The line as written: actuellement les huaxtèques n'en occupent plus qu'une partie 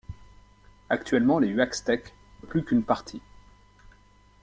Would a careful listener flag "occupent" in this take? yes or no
yes